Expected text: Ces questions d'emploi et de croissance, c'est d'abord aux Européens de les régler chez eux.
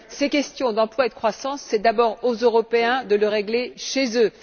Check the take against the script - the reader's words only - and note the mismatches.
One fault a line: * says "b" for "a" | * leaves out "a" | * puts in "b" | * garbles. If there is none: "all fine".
all fine